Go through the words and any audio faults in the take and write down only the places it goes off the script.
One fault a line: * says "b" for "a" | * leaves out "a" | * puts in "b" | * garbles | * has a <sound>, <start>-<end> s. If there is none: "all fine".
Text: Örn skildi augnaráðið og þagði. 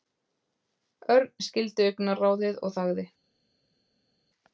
all fine